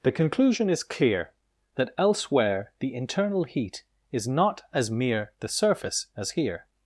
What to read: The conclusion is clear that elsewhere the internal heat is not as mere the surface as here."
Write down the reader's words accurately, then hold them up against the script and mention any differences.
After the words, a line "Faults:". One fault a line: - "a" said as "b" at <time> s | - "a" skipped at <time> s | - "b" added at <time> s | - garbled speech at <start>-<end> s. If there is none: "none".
The conclusion is clear that elsewhere the internal heat is not as mere the surface as here."
Faults:
none